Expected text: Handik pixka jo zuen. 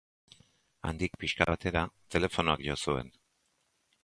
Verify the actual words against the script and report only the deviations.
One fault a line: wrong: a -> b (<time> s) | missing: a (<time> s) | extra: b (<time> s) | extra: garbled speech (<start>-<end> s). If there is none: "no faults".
extra: batera telefonoak (1.5 s)